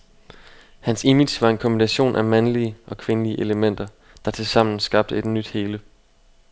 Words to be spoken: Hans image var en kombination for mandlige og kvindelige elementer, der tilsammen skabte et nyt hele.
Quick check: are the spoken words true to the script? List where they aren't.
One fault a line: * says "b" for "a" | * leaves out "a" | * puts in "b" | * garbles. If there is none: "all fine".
* says "af" for "for"